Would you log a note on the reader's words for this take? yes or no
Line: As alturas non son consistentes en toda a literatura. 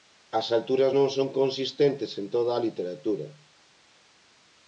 no